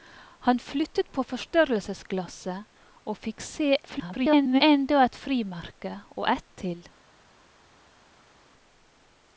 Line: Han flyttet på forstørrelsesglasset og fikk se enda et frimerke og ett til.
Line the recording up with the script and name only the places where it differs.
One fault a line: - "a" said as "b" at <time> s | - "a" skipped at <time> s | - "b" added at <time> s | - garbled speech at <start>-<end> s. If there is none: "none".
- garbled speech at 3.8-4.6 s